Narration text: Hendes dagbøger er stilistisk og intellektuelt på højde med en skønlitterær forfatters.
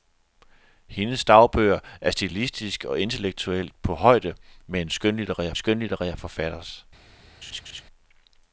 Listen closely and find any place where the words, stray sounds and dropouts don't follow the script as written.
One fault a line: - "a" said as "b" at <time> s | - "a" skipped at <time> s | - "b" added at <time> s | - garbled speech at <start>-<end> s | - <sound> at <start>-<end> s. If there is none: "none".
- "skønlitterær" added at 5.5 s
- laugh at 7.4-7.8 s